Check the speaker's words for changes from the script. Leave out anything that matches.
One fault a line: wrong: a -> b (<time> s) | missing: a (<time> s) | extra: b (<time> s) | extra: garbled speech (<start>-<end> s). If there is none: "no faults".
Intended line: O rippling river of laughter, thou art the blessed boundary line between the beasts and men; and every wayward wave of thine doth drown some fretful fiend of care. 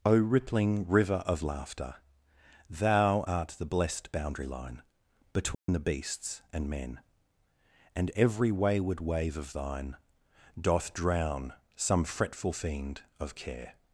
no faults